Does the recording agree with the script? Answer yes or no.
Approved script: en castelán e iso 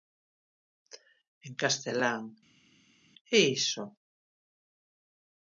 yes